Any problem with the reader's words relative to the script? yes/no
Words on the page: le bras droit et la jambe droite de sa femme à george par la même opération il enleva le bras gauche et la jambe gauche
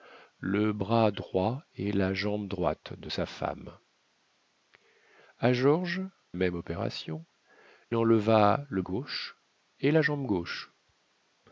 yes